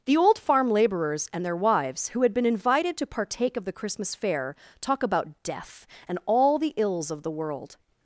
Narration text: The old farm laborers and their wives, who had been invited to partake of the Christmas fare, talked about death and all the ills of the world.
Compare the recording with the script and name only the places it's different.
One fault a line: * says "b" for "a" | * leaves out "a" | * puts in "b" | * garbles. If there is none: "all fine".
* says "talk" for "talked"